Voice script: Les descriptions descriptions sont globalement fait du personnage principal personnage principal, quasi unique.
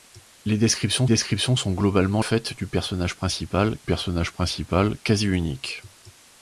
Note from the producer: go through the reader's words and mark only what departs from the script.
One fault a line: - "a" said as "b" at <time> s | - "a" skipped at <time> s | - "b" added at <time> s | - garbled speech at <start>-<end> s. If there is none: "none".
none